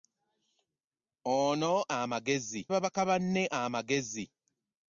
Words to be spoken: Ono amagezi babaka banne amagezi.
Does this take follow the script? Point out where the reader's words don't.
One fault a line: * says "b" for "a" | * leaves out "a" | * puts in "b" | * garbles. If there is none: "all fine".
all fine